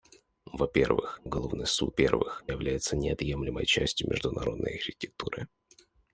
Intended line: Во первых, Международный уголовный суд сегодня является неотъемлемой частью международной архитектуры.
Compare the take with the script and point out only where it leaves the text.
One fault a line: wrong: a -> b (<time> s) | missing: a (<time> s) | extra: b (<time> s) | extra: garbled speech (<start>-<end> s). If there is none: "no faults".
missing: Международный (1.2 s)
wrong: сегодня -> первых (1.9 s)